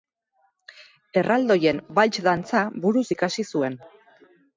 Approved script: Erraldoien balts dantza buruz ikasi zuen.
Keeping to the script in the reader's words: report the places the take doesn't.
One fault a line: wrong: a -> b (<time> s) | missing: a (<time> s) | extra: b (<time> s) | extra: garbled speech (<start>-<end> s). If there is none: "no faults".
no faults